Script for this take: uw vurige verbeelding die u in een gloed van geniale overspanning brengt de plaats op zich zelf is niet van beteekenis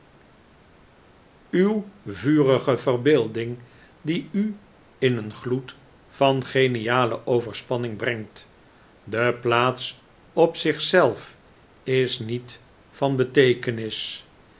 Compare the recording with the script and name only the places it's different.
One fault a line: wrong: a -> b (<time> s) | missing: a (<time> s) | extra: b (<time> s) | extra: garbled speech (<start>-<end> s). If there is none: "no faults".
no faults